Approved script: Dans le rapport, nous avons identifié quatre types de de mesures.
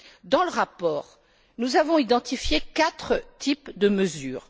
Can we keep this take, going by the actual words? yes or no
no